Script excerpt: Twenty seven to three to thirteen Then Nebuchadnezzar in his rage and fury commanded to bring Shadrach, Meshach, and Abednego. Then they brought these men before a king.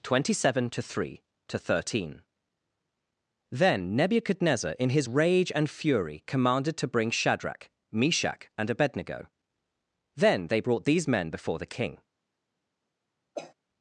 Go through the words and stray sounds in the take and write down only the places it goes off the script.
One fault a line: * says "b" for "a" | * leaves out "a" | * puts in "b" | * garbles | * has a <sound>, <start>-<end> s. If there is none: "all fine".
* says "the" for "a"
* has a cough, 13.4-13.5 s